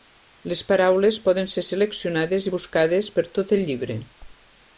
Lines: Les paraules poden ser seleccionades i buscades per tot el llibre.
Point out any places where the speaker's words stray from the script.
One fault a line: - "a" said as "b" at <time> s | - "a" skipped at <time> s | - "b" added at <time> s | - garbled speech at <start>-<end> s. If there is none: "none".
none